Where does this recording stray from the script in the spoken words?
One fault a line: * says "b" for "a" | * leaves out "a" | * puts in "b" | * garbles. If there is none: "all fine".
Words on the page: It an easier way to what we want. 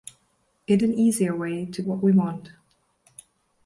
all fine